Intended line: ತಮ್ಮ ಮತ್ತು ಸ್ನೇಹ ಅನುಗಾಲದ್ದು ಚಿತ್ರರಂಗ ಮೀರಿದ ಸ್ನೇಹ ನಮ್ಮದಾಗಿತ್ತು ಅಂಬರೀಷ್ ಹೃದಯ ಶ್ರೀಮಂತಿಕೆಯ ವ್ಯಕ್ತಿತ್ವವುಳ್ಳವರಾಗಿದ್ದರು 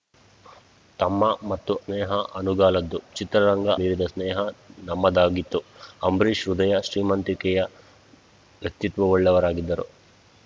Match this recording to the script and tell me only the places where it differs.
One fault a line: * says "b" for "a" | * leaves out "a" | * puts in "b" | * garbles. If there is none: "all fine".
all fine